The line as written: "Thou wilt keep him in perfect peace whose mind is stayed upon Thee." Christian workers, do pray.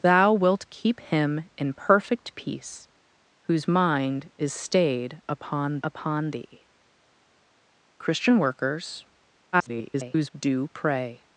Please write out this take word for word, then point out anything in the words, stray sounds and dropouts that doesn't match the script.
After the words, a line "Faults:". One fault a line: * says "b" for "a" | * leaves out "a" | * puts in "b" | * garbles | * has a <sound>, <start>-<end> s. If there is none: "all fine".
"Thou wilt keep him in perfect peace whose mind is stayed upon upon Thee." Christian workers, [garbled] do pray.
Faults:
* puts in "upon"
* garbles